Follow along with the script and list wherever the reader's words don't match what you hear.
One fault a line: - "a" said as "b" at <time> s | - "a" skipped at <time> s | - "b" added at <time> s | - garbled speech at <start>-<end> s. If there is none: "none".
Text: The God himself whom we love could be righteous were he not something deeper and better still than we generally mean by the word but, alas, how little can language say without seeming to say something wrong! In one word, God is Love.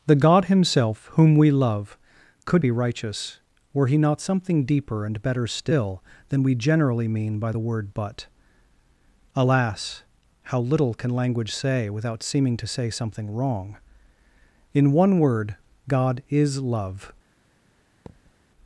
none